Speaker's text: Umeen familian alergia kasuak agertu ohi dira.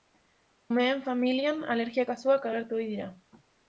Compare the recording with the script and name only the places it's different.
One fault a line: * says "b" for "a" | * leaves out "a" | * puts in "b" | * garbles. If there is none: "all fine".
all fine